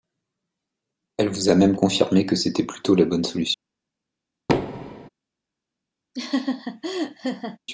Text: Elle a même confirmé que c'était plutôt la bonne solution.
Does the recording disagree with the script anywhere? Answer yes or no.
yes